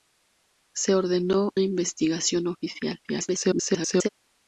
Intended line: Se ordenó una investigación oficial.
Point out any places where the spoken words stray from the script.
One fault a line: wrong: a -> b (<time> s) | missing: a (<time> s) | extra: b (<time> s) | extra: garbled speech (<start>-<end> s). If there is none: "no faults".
missing: una (1.5 s)
extra: garbled speech (3.0-4.1 s)